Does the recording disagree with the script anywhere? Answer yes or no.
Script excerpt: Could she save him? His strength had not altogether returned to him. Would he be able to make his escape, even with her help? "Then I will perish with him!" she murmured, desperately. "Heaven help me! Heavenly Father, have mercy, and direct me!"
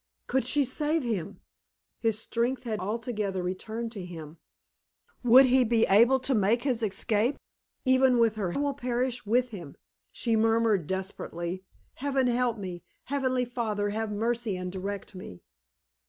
yes